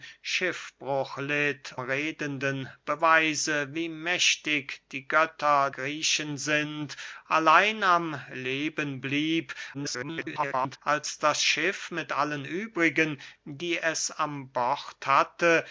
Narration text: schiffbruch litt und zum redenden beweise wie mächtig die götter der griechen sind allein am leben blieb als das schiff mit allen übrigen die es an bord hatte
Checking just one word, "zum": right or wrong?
wrong